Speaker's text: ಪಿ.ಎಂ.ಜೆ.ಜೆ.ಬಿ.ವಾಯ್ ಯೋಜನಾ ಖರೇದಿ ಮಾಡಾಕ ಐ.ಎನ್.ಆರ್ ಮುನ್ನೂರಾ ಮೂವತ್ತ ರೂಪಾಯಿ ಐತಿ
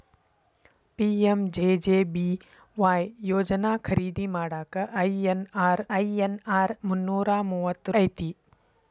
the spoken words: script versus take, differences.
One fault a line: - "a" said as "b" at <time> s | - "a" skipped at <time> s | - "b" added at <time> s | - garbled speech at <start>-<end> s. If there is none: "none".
- "ಐ.ಎನ್.ಆರ್" added at 6.0 s
- "ರೂಪಾಯಿ" skipped at 8.0 s